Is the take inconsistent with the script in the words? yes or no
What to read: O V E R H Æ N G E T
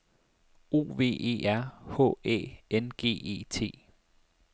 no